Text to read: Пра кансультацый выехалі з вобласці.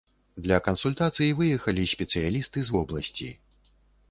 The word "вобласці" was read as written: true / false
true